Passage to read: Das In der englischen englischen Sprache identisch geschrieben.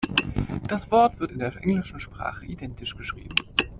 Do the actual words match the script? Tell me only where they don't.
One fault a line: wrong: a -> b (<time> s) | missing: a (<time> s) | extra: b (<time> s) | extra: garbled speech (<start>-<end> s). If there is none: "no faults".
extra: Wort wird (0.9 s)
missing: englischen (2.0 s)